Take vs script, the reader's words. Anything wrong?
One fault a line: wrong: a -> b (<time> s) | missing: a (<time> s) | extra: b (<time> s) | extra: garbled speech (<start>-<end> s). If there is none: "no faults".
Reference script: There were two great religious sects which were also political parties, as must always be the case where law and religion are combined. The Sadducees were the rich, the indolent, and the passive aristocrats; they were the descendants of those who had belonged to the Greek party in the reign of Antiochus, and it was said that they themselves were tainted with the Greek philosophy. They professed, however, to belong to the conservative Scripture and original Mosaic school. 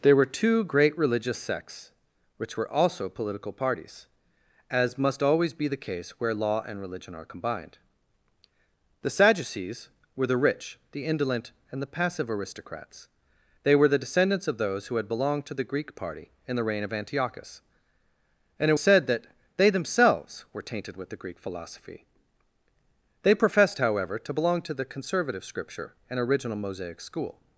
missing: was (18.8 s)